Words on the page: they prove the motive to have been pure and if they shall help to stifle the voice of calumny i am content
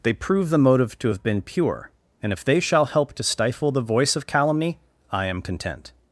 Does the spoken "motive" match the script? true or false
true